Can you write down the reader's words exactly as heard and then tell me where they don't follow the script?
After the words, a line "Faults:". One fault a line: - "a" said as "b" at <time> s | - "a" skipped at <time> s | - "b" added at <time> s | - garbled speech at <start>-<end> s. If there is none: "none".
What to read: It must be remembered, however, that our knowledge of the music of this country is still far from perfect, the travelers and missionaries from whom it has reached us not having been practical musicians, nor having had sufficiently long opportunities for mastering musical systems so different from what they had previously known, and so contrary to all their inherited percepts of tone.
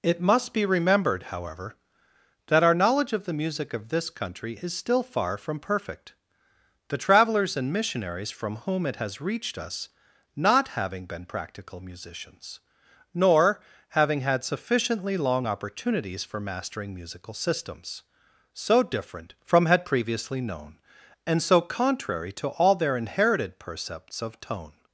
It must be remembered, however, that our knowledge of the music of this country is still far from perfect, the travelers and missionaries from whom it has reached us not having been practical musicians, nor having had sufficiently long opportunities for mastering musical systems so different from had previously known, and so contrary to all their inherited percepts of tone.
Faults:
- "what they" skipped at 19.7 s